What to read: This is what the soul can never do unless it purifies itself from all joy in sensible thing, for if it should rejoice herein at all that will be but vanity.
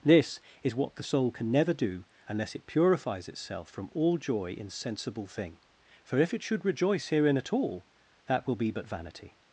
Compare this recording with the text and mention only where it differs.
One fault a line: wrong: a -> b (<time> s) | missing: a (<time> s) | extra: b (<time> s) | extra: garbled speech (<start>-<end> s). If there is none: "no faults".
no faults